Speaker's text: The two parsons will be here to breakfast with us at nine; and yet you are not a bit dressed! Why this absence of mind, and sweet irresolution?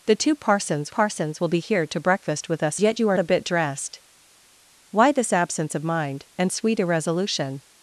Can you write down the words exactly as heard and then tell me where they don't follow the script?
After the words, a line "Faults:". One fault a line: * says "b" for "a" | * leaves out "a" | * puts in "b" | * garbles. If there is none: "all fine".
The two parsons parsons will be here to breakfast with us yet you are a bit dressed! Why this absence of mind, and sweet irresolution?
Faults:
* puts in "parsons"
* leaves out "at nine and"
* leaves out "not"